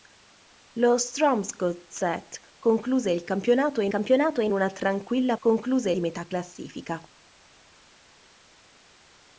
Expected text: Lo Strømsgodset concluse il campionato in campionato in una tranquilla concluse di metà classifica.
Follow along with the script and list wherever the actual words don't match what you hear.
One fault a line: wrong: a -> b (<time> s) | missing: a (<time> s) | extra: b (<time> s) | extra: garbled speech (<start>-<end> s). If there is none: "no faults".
no faults